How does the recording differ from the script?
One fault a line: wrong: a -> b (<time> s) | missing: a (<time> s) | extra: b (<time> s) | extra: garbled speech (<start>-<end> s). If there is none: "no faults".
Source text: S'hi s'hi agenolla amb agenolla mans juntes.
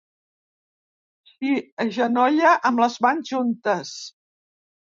missing: s'hi (1.5 s)
wrong: agenolla -> les (2.9 s)